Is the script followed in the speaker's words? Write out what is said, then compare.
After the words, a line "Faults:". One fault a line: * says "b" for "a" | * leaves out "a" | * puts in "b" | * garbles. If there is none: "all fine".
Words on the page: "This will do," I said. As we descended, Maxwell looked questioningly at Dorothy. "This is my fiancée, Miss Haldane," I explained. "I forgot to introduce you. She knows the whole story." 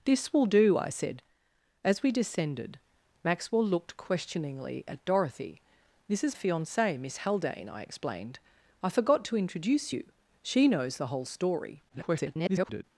"This will do," I said. As we descended, Maxwell looked questioningly at Dorothy. "This is fiancée, Miss Haldane," I explained. "I forgot to introduce you. She knows the whole story." [garbled]
Faults:
* leaves out "my"
* garbles